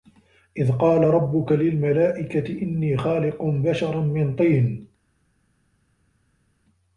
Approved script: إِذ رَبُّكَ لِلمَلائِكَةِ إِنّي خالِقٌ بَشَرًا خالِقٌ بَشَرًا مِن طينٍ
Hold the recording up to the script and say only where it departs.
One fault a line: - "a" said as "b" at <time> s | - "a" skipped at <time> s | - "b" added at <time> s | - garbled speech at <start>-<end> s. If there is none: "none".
- "قالَ" added at 0.7 s
- "خالِقٌ بَشَرًا" skipped at 4.0 s